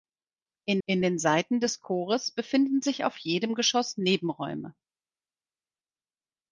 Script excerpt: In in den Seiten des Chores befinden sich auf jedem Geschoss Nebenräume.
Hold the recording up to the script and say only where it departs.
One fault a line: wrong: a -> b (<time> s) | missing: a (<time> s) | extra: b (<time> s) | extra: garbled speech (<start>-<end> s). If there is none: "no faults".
no faults